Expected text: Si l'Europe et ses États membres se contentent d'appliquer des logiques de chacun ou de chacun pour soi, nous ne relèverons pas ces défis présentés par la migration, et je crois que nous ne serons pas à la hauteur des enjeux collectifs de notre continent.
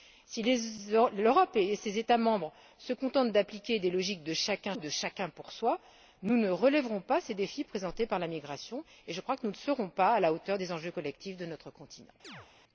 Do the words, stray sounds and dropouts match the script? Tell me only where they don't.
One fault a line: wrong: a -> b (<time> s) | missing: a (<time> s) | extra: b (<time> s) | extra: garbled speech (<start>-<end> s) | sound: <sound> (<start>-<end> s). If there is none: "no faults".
sound: chirp (12.2-12.5 s)